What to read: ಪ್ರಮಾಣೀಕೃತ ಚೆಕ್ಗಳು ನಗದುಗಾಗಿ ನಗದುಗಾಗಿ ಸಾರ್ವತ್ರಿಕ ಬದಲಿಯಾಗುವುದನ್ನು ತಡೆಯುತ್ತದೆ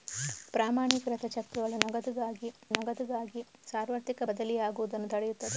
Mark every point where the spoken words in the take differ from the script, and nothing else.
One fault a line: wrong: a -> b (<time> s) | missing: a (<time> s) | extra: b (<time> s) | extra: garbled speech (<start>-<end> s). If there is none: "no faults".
no faults